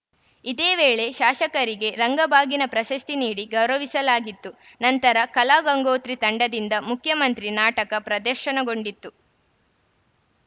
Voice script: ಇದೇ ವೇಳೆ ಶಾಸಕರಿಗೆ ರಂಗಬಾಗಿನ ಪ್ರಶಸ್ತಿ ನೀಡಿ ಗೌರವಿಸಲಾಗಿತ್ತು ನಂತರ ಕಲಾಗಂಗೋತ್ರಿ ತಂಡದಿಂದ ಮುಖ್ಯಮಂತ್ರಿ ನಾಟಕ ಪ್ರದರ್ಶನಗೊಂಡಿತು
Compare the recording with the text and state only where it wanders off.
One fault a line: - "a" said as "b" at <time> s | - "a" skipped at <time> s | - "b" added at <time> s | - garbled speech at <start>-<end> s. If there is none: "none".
none